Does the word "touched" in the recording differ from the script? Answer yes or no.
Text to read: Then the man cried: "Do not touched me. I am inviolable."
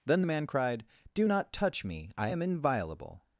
yes